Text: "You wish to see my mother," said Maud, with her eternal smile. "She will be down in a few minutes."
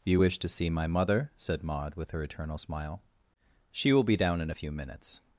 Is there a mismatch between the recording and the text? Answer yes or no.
no